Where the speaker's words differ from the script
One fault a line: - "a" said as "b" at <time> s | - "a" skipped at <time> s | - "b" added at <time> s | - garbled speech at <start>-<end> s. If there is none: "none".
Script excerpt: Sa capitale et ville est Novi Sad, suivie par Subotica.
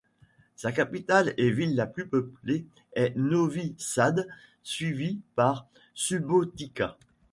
- "la plus peuplée" added at 1.8 s